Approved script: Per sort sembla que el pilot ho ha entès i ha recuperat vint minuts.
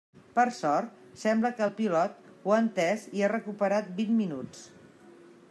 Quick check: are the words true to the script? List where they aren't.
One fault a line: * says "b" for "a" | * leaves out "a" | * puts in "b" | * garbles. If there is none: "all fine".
all fine